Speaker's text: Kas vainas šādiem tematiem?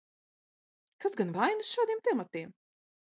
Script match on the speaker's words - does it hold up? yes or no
no